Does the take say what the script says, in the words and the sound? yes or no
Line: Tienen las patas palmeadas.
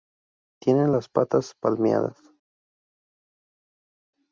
yes